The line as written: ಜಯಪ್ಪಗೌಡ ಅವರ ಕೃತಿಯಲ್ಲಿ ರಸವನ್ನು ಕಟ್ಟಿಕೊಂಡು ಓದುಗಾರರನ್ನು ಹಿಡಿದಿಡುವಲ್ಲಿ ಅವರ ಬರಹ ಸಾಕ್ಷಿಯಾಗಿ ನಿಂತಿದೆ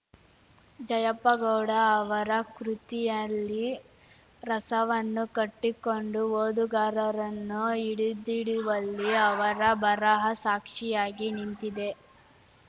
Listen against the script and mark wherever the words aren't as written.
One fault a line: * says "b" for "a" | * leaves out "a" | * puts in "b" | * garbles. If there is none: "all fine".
all fine